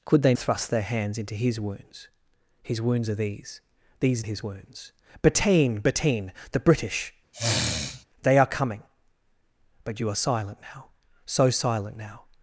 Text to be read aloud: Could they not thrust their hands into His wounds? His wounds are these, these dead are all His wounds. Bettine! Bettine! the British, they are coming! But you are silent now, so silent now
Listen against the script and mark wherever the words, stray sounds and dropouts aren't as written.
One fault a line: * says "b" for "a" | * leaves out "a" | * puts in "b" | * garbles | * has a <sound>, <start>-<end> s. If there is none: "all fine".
* leaves out "not"
* leaves out "dead are all"
* has a sniff, 7.3-8.1 s